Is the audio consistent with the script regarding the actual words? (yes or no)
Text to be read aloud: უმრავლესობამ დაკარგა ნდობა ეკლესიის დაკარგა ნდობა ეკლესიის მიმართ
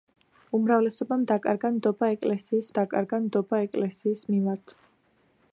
yes